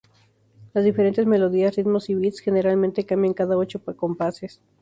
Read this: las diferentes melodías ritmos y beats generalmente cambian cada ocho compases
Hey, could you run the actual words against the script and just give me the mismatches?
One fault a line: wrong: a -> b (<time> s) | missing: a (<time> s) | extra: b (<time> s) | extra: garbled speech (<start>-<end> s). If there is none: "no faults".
no faults